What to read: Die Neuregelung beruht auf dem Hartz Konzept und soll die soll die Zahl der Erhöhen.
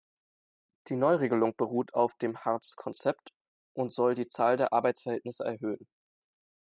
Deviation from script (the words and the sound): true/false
true